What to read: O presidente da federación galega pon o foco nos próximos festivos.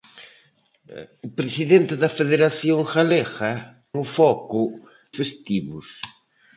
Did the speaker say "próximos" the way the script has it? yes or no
no